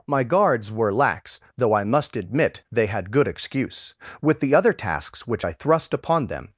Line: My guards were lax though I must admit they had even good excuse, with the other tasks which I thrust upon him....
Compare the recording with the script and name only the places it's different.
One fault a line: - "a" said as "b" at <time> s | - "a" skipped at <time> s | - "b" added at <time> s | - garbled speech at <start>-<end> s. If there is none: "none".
- "even" skipped at 3.1 s
- "him" said as "them" at 6.3 s